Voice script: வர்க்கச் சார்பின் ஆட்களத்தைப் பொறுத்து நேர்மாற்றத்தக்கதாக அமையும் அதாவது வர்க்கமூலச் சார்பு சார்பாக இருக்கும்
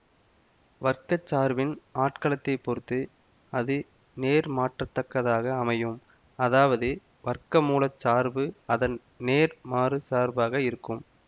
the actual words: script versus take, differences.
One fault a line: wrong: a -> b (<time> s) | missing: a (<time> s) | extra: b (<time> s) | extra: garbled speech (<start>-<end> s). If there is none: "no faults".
extra: அது (3.5 s)
extra: அதன் நேர்மாறுச் (8.7 s)